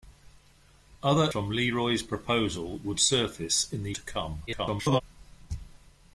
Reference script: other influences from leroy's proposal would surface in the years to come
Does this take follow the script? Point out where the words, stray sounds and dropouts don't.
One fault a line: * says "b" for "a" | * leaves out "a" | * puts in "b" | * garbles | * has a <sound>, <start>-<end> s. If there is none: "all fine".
* leaves out "influences"
* leaves out "years"
* garbles